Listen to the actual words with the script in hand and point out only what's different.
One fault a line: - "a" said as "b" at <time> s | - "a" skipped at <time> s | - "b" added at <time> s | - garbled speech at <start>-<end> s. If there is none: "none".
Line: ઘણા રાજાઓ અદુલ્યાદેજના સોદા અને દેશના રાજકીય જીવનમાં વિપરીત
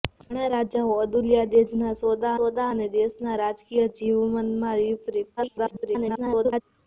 - "સોદા" added at 2.4 s
- garbled speech at 5.4-6.6 s